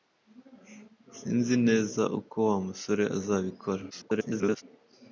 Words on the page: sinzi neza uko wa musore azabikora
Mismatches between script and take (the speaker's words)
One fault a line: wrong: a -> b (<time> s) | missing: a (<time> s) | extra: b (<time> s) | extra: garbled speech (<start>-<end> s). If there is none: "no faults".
extra: garbled speech (3.9-4.6 s)